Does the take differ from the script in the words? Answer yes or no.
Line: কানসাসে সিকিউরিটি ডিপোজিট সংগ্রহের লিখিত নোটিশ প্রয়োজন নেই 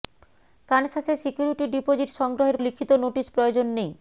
no